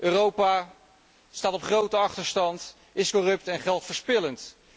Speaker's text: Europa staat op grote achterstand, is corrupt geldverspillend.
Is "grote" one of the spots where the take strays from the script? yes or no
no